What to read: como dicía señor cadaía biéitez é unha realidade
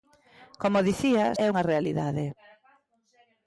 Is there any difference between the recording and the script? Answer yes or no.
yes